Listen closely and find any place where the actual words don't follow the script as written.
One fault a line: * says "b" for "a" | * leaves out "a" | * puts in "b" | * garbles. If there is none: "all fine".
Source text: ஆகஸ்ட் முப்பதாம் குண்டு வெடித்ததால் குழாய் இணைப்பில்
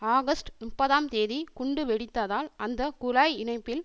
* puts in "தேதி"
* puts in "அந்த"